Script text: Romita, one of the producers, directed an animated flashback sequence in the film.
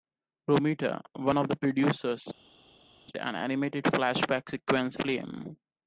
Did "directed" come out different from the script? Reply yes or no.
yes